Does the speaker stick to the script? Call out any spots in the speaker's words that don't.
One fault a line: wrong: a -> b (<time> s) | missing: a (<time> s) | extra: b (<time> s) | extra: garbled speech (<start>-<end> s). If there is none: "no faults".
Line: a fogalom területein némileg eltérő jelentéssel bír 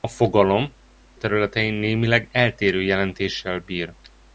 no faults